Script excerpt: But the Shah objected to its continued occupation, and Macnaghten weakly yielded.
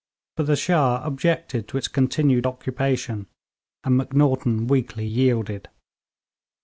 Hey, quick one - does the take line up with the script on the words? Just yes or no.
yes